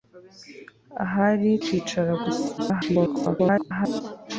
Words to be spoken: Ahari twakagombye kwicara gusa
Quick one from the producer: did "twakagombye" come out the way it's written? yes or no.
no